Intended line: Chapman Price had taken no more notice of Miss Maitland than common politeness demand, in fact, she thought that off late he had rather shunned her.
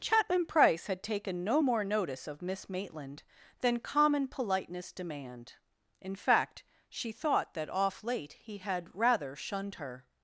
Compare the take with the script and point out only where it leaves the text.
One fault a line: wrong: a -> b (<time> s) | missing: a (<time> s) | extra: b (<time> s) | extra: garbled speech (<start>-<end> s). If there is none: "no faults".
no faults